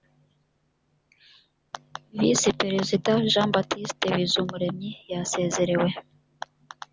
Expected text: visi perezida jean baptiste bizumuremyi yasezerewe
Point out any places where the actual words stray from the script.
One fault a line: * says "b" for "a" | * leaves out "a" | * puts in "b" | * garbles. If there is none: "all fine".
all fine